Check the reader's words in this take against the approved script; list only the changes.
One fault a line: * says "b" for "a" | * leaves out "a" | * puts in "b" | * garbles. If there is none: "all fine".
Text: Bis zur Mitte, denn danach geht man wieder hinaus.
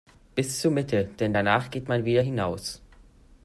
all fine